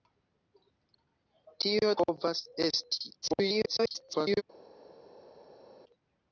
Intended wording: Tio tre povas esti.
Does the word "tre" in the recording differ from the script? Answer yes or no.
yes